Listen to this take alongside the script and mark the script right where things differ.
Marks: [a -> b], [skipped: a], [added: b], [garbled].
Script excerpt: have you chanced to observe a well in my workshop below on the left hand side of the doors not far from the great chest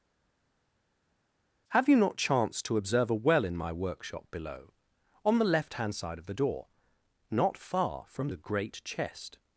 have you [added: not] chanced to observe a well in my workshop below on the left hand side of the [doors -> door] not far from the great chest